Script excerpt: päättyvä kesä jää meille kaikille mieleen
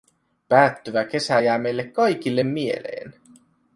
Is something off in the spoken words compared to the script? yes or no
no